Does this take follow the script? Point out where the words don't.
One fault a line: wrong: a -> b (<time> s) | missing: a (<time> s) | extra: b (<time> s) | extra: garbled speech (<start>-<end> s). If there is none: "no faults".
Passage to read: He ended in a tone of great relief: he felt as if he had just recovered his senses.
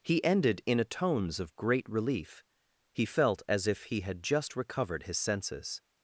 wrong: tone -> tones (0.8 s)